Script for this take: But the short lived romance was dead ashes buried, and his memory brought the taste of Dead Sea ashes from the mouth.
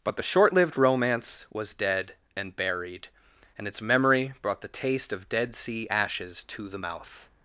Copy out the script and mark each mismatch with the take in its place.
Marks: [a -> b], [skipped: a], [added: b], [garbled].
But the short lived romance was dead [ashes -> and] buried, and [his -> its] memory brought the taste of Dead Sea ashes [from -> to] the mouth.